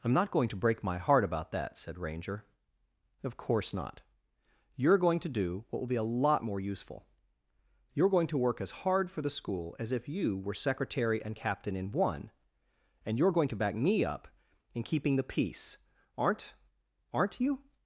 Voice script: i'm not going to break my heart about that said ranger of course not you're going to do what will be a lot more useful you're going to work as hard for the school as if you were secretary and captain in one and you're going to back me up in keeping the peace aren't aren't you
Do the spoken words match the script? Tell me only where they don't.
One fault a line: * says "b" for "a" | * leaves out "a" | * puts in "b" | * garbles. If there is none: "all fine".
all fine